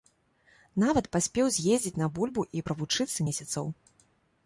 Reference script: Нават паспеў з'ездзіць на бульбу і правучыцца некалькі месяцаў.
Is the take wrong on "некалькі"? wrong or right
wrong